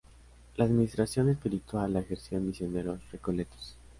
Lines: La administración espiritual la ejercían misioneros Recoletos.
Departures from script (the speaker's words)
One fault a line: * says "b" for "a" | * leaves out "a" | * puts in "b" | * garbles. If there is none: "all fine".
all fine